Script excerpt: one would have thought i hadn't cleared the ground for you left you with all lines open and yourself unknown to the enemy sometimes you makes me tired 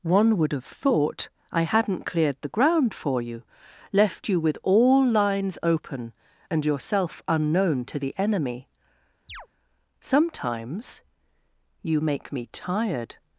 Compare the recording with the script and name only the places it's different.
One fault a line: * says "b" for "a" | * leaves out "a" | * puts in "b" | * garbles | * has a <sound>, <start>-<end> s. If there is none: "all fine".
* has a chirp, 9.3-9.5 s
* says "make" for "makes"